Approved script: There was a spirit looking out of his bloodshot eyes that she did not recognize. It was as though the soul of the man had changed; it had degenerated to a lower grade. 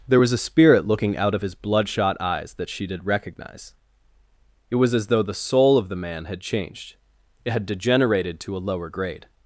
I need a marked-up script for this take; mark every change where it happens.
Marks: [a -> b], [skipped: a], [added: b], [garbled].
There was a spirit looking out of his bloodshot eyes that she did [skipped: not] recognize. It was as though the soul of the man had changed; it had degenerated to a lower grade.